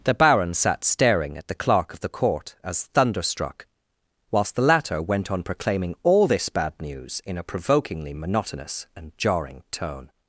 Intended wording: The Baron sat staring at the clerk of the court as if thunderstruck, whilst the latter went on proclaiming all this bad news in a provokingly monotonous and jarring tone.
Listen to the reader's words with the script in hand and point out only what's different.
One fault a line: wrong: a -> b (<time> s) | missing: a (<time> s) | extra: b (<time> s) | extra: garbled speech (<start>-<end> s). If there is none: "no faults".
missing: if (2.9 s)